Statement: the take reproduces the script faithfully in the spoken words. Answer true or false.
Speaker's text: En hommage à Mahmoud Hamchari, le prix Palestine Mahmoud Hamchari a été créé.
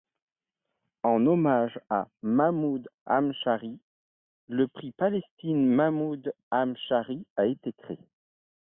true